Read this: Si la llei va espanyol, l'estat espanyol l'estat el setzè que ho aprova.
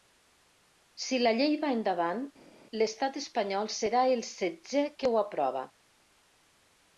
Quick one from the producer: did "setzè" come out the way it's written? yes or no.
yes